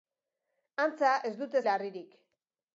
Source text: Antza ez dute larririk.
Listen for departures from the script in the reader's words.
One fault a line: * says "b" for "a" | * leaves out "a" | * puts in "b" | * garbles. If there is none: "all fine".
all fine